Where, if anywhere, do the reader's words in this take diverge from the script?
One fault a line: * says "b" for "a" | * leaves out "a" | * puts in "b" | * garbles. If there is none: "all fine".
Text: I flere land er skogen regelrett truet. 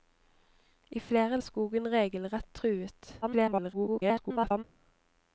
* leaves out "land"
* garbles